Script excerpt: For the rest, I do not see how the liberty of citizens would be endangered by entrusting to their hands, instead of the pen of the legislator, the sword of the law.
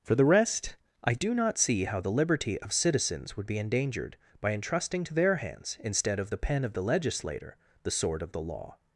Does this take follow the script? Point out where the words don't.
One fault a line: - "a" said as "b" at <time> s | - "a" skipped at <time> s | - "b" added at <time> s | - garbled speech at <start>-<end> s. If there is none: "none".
none